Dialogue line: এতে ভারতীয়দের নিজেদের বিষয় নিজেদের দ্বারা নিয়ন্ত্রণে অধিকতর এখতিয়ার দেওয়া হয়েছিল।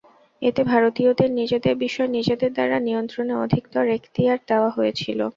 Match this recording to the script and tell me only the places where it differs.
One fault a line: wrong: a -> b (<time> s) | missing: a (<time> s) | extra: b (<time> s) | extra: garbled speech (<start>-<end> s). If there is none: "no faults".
no faults